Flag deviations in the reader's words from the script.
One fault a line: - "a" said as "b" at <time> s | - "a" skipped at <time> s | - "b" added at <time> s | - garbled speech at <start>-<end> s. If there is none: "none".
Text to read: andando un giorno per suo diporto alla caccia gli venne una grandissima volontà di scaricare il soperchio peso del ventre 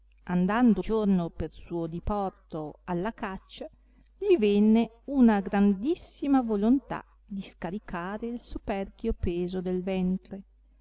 - "un" skipped at 0.8 s